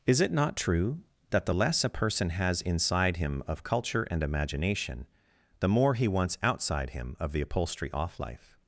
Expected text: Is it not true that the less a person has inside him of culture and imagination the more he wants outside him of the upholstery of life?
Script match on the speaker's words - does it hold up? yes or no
no